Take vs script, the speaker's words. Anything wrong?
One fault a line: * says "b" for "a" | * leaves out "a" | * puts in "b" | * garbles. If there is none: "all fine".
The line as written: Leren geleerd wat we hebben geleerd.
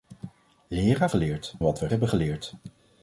all fine